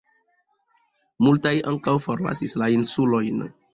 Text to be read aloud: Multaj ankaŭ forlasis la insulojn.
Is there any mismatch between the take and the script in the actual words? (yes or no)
no